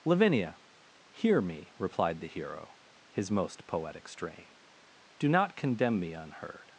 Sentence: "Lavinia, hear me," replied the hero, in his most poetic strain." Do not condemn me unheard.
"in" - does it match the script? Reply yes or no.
no